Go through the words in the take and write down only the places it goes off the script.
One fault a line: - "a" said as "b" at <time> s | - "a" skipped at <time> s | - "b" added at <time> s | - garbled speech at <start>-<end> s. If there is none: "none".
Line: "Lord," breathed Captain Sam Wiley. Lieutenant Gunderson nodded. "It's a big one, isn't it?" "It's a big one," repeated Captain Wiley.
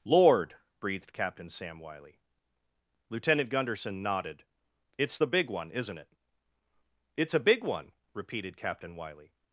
- "a" said as "the" at 5.2 s